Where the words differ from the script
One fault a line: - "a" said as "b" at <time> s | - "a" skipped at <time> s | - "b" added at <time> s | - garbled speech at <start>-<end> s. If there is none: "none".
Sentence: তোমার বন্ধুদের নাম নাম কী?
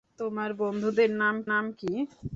none